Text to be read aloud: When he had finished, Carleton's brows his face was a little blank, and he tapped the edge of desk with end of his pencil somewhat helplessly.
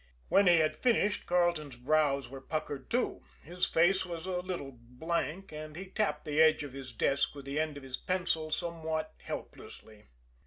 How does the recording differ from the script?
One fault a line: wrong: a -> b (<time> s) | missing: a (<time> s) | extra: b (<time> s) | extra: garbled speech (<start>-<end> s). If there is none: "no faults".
extra: were puckered too (2.3 s)
extra: his (6.7 s)
extra: the (7.4 s)